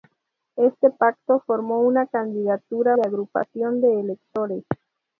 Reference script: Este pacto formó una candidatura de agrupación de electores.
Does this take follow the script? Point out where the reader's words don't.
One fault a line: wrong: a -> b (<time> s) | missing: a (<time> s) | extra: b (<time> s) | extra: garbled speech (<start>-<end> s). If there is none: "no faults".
no faults